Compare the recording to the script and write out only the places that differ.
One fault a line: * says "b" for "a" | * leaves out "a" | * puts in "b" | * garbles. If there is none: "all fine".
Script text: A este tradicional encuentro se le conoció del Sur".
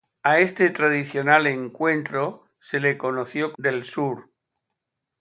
all fine